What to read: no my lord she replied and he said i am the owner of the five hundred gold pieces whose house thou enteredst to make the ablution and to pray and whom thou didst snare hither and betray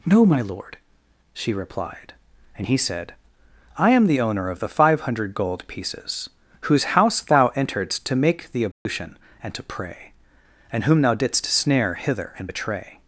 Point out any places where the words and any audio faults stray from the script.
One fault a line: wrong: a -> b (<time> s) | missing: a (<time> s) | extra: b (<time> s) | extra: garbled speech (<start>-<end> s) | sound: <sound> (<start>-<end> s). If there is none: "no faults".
sound: dropout (8.7-8.9 s)